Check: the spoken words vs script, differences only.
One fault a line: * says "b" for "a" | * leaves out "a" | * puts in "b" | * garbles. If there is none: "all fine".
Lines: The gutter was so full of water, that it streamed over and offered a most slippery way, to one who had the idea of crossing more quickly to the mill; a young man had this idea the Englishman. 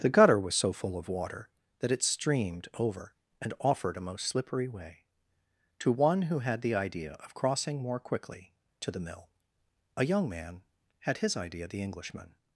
* says "his" for "this"